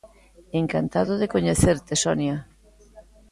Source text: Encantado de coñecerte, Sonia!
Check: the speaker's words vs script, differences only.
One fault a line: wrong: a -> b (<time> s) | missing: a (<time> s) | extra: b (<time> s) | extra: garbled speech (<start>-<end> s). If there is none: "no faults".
no faults